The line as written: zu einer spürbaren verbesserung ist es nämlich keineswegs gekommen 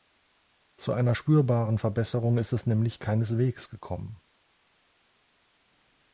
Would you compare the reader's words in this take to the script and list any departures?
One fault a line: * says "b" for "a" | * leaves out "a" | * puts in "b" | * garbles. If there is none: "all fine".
all fine